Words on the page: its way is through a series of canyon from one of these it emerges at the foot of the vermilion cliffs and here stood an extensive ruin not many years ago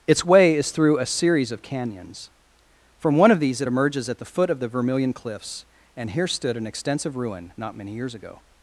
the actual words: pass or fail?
fail